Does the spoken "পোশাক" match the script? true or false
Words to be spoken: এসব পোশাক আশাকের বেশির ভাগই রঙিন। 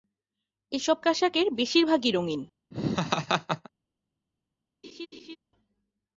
false